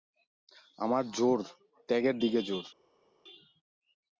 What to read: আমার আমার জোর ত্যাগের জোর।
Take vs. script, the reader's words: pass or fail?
fail